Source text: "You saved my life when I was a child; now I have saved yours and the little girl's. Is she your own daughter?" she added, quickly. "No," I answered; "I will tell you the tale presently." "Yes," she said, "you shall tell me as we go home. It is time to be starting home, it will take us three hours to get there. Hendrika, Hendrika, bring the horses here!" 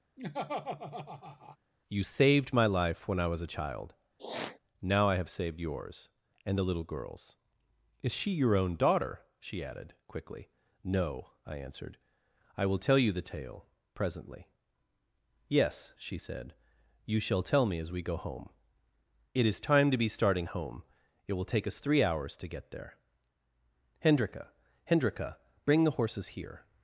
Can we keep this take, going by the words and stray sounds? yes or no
no